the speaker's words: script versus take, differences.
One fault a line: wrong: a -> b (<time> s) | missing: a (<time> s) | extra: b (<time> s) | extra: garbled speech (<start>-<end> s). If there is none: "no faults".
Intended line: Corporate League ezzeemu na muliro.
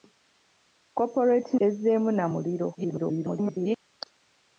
missing: League (1.5 s)
extra: garbled speech (2.8-3.8 s)